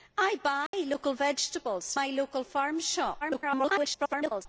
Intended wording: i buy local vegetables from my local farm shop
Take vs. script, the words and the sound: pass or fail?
fail